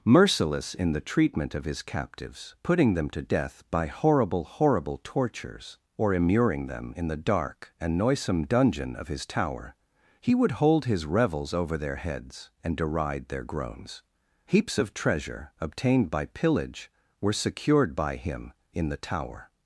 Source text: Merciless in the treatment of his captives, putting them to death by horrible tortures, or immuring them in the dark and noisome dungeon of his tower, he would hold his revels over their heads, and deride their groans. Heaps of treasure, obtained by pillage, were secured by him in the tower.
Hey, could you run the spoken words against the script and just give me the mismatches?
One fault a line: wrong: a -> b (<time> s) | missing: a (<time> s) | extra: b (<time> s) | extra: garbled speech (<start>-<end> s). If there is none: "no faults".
extra: horrible (4.4 s)